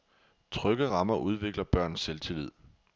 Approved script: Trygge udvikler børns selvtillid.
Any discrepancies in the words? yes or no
yes